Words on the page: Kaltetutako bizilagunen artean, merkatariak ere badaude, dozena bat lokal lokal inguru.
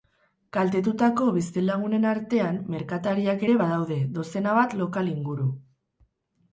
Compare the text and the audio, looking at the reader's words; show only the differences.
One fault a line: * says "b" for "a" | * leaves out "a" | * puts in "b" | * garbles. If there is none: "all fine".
* leaves out "lokal"